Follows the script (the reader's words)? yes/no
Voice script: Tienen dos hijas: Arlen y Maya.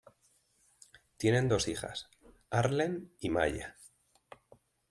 yes